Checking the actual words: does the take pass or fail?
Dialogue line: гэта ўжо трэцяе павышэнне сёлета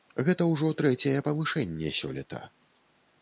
pass